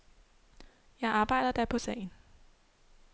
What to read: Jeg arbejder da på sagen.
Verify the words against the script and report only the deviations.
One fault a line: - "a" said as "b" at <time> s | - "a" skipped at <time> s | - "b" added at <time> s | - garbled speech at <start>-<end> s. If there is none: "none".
none